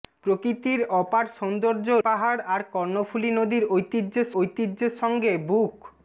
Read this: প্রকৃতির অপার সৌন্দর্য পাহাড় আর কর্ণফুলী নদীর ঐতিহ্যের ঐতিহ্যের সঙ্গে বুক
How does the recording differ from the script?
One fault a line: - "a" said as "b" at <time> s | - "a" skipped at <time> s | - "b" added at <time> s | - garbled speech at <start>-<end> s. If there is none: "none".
none